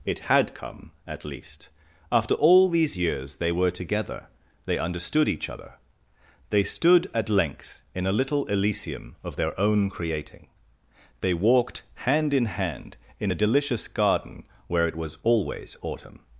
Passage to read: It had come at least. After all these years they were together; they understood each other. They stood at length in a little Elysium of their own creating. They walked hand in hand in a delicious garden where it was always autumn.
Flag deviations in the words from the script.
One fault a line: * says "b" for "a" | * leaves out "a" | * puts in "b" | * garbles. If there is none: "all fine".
all fine